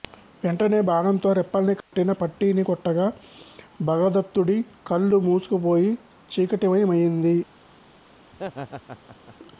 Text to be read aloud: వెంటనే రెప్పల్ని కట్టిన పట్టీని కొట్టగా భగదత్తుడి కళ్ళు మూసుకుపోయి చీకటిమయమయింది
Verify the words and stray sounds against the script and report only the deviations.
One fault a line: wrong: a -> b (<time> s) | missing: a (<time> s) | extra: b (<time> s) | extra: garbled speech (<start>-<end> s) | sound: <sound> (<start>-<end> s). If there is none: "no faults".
extra: బాణంతో (0.8 s)
sound: dropout (1.8-1.9 s)
sound: laugh (8.3-9.4 s)